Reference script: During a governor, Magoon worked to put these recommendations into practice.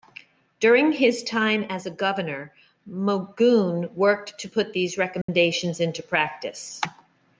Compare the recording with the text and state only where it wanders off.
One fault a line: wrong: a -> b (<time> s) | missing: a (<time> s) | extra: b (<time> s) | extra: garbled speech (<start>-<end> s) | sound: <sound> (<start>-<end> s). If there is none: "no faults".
extra: his time as (0.9 s)
sound: dropout (5.2-5.3 s)